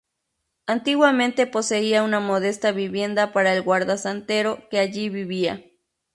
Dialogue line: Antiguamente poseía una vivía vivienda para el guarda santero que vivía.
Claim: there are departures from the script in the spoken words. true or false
true